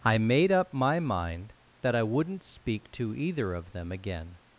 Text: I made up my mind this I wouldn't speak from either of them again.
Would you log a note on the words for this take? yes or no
yes